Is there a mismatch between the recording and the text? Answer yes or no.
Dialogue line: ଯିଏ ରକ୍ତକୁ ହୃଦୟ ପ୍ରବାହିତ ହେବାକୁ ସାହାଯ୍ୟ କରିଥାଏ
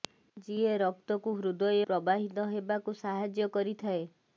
no